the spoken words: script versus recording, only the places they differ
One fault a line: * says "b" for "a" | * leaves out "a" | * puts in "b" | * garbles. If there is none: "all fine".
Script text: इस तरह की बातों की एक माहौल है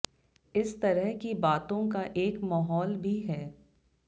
* says "का" for "की"
* puts in "भी"